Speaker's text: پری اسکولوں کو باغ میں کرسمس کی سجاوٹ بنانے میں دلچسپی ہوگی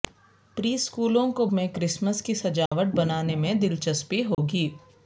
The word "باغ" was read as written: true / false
false